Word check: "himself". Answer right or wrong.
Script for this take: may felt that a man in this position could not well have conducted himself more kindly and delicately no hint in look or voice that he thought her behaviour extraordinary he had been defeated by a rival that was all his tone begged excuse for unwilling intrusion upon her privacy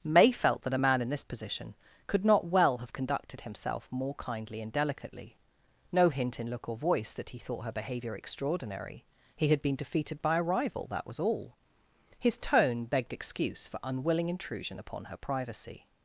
right